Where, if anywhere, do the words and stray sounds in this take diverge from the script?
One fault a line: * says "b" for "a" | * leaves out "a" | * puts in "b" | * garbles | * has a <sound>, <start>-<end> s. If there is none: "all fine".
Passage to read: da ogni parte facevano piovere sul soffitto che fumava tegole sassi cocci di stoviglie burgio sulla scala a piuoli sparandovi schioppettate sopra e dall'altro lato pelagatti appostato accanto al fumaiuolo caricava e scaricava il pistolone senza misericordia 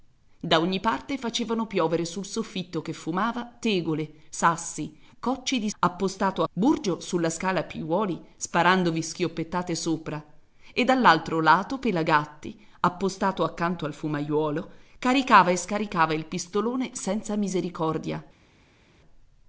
* says "appostato" for "stoviglie"